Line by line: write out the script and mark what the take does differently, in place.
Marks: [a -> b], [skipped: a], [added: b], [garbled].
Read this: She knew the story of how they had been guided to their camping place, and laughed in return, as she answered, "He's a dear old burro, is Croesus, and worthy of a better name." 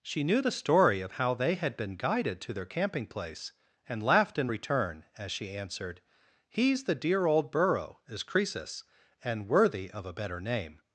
She knew the story of how they had been guided to their camping place, and laughed in return, as she answered, "He's [a -> the] dear old burro, is Croesus, and worthy of a better name."